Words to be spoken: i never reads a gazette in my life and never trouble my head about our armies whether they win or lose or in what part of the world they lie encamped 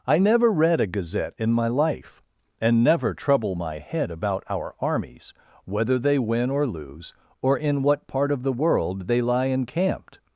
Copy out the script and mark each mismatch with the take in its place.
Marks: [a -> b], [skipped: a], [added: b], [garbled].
i never [reads -> read] a gazette in my life and never trouble my head about our armies whether they win or lose or in what part of the world they lie encamped